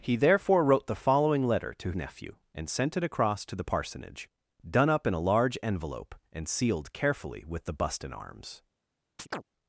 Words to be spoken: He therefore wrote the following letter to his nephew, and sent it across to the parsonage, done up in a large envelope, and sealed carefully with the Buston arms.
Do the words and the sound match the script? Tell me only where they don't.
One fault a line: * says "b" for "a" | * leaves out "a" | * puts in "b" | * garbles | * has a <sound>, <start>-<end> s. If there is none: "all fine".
* leaves out "his"
* has a chirp, 9.2-9.4 s